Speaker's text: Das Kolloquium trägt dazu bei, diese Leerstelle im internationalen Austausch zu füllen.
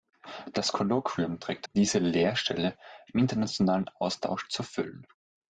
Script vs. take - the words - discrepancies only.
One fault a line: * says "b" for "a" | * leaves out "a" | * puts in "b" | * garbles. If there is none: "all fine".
* leaves out "dazu bei"